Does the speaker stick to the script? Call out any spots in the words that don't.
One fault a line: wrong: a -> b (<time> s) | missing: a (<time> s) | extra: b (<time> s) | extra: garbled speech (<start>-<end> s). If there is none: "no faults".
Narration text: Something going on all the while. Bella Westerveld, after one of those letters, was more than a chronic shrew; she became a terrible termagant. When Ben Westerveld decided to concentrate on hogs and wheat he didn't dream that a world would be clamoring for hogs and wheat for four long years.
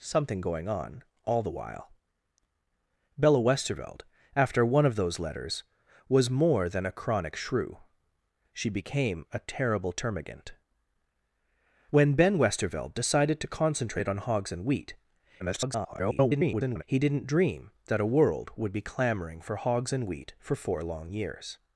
extra: garbled speech (15.4-16.8 s)